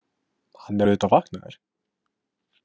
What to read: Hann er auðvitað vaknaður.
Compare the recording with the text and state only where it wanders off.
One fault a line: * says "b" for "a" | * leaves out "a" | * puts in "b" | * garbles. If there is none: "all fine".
all fine